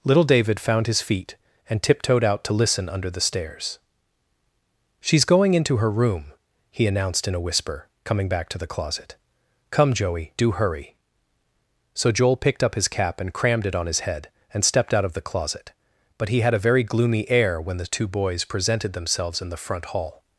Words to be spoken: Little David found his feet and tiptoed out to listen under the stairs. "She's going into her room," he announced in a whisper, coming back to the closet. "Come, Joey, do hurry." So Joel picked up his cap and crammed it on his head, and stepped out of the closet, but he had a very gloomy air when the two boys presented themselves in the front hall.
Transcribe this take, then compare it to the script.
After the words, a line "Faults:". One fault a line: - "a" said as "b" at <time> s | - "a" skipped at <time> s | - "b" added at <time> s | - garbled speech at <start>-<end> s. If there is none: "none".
Little David found his feet and tiptoed out to listen under the stairs. "She's going into her room," he announced in a whisper, coming back to the closet. "Come, Joey, do hurry." So Joel picked up his cap and crammed it on his head, and stepped out of the closet, but he had a very gloomy air when the two boys presented themselves in the front hall.
Faults:
none